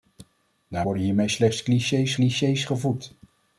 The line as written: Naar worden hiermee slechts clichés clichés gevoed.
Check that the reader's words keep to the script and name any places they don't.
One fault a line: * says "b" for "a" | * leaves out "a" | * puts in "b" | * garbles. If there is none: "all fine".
all fine